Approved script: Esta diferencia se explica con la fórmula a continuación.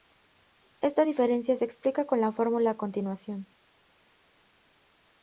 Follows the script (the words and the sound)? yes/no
yes